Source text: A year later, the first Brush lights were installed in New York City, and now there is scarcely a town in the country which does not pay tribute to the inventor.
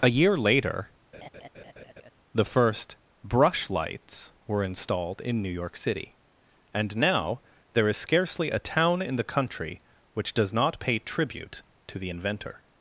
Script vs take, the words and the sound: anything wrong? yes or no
yes